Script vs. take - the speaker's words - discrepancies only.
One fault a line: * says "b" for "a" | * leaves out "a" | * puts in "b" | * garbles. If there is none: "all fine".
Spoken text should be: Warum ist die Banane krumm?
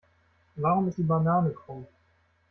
all fine